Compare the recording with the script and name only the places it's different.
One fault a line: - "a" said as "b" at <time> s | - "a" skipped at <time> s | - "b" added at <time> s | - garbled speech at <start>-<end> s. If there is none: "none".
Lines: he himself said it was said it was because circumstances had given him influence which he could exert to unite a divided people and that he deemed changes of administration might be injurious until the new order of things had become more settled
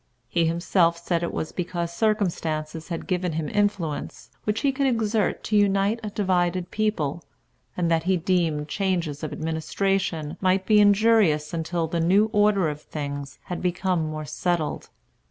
- "said it was" skipped at 1.5 s